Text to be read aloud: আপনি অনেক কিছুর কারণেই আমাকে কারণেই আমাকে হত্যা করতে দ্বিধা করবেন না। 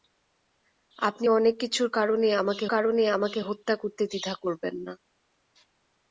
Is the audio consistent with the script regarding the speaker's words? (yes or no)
yes